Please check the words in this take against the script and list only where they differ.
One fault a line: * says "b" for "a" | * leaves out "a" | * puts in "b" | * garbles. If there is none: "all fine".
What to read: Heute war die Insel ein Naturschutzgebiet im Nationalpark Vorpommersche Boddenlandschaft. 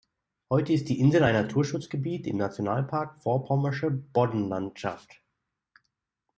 * says "ist" for "war"